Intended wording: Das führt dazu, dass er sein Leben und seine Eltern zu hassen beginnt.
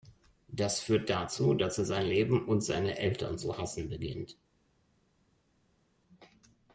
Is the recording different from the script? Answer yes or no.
no